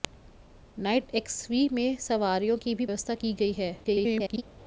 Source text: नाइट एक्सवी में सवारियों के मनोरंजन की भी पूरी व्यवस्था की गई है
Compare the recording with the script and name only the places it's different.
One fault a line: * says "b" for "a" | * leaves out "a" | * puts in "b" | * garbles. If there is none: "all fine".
* leaves out "के मनोरंजन"
* leaves out "पूरी"
* garbles